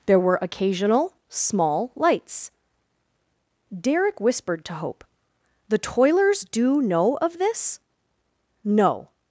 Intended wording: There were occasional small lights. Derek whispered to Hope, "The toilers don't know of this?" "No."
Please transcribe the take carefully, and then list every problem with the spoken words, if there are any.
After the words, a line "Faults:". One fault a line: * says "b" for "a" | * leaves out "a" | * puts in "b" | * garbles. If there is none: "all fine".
There were occasional small lights. Derek whispered to Hope, "The toilers do know of this?" "No."
Faults:
* says "do" for "don't"